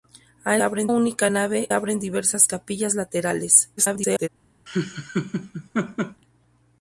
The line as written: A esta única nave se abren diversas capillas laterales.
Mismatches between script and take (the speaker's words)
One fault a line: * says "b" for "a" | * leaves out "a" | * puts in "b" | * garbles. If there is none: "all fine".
* says "abren" for "esta"
* leaves out "se"
* garbles